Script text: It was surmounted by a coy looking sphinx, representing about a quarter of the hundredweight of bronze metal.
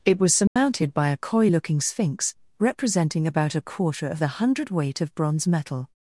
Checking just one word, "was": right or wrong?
right